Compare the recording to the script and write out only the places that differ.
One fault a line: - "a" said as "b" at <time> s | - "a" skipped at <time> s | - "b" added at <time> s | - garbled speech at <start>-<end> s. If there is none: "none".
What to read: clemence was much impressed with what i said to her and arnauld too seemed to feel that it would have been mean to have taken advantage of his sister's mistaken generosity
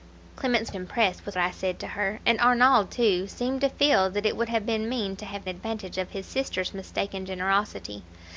- "was much" skipped at 0.7 s
- "what" skipped at 1.4 s
- "taken" skipped at 5.5 s